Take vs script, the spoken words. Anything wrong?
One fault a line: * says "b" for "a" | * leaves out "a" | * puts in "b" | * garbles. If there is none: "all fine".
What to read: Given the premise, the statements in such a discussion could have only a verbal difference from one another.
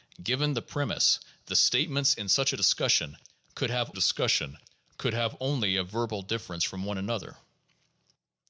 * puts in "discussion could have"